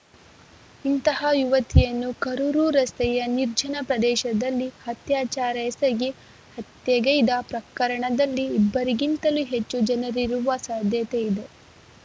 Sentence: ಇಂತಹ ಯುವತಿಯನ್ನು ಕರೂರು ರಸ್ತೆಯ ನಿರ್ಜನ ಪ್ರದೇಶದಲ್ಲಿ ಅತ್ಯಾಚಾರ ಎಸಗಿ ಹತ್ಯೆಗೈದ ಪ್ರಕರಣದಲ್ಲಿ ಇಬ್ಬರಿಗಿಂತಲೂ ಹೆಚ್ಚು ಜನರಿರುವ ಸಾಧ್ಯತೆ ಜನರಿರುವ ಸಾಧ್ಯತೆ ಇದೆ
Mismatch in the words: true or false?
true